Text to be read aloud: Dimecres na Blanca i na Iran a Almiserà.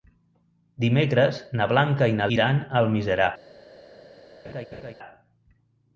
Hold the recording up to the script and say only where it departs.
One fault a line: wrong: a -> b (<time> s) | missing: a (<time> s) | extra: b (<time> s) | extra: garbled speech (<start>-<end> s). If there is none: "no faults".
no faults